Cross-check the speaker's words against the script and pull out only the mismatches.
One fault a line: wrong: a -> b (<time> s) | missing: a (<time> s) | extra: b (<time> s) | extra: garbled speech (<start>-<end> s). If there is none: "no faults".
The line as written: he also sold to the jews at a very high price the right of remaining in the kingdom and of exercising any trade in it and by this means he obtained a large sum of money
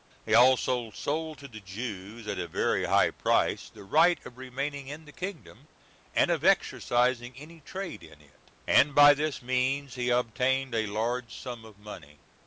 no faults